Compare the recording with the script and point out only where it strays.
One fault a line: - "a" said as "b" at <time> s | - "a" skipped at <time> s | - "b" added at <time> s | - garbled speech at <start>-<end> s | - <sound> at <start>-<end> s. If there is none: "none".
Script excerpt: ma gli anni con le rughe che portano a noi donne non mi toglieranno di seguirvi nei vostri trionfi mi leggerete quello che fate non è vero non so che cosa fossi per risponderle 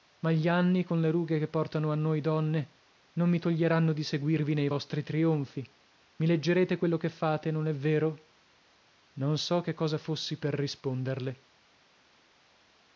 none